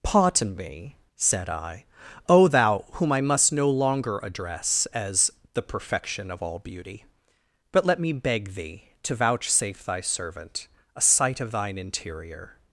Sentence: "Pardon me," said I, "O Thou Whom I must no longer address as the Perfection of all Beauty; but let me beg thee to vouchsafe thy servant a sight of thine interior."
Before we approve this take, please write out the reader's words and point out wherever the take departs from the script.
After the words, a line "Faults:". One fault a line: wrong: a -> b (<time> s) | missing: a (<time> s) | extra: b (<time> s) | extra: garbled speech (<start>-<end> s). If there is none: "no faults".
"Pardon me," said I, "O Thou Whom I must no longer address as the Perfection of all Beauty; but let me beg thee to vouchsafe thy servant a sight of thine interior."
Faults:
no faults